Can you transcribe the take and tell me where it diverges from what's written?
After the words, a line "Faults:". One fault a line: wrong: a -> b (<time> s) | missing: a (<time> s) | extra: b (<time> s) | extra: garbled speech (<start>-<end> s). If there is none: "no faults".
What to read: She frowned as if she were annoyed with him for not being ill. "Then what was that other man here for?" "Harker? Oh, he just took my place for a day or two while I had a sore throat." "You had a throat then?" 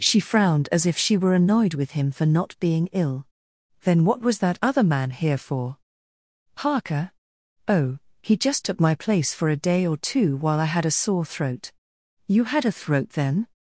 She frowned as if she were annoyed with him for not being ill. "Then what was that other man here for?" "Harker? Oh, he just took my place for a day or two while I had a sore throat." "You had a throat then?"
Faults:
no faults